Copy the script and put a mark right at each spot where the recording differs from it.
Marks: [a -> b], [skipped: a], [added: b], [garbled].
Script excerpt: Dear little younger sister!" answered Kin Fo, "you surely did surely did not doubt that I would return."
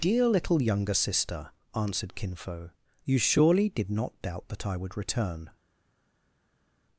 Dear little younger sister!" answered Kin Fo, "you surely did [skipped: surely did] not doubt that I would return."